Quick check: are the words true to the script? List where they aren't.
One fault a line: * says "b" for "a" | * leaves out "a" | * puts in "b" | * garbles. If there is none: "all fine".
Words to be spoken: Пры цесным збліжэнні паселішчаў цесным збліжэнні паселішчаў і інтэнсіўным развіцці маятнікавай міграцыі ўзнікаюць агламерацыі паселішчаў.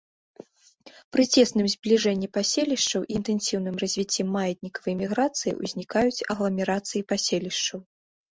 * leaves out "цесным збліжэнні паселішчаў"